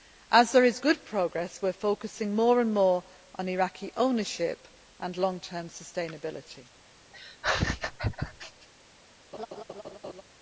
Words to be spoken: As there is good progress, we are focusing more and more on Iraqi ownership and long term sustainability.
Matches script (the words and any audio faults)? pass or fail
fail